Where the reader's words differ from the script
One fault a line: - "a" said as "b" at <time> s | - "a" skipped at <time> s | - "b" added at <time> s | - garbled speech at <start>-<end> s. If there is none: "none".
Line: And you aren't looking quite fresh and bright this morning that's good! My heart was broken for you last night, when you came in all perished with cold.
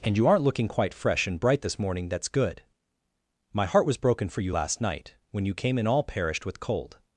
none